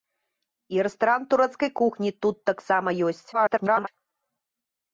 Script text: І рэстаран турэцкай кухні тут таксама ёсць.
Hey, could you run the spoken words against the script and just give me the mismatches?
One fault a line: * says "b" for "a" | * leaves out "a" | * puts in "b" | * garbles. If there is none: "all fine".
* garbles